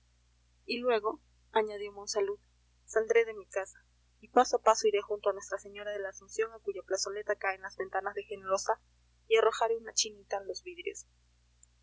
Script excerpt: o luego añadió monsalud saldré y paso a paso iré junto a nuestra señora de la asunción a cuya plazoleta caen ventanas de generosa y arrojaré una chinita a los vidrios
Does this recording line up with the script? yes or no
no